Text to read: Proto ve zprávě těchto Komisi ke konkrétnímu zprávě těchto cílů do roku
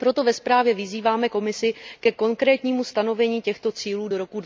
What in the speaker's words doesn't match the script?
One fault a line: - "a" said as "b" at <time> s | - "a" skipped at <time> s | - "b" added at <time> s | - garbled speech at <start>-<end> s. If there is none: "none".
- "těchto" said as "vyzýváme" at 0.7 s
- "zprávě" said as "stanovení" at 2.8 s